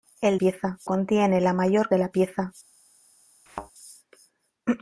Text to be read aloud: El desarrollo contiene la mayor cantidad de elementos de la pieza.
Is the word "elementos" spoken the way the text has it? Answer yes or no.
no